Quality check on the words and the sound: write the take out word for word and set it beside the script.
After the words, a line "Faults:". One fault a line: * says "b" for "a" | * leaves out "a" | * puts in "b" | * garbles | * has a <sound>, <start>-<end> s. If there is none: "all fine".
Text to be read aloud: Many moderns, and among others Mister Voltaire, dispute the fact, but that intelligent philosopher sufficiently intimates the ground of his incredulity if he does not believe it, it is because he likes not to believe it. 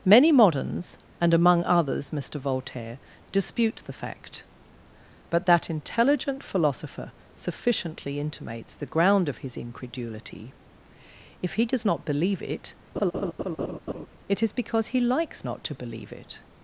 Many moderns, and among others Mister Voltaire, dispute the fact, but that intelligent philosopher sufficiently intimates the ground of his incredulity if he does not believe it, it is because he likes not to believe it.
Faults:
* has a laugh, 13.0-14.1 s